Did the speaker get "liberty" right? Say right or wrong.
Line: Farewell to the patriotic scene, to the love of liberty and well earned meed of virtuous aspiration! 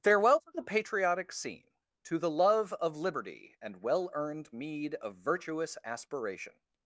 right